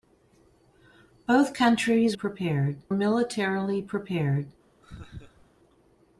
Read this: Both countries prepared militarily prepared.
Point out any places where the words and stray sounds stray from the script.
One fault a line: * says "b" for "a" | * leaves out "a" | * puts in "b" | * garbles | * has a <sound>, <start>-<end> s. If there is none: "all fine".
* has a laugh, 4.8-5.5 s